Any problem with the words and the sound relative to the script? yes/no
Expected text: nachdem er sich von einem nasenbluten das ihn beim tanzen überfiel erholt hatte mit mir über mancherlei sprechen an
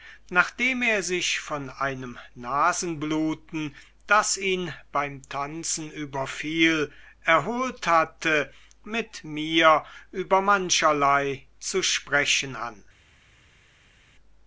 yes